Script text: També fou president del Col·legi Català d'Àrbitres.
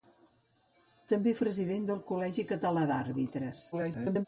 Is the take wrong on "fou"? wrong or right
wrong